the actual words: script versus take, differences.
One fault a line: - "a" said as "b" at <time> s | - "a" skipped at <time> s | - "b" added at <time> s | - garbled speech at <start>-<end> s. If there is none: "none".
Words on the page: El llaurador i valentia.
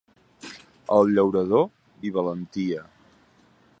none